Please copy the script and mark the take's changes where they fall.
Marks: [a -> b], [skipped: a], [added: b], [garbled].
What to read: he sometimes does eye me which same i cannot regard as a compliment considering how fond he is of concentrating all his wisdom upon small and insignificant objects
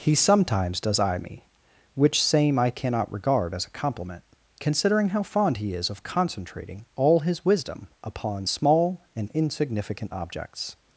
he sometimes does eye me which same i cannot regard as a compliment considering how fond he is of concentrating all his wisdom upon small and insignificant objects